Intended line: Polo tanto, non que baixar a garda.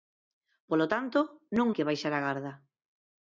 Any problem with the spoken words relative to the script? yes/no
no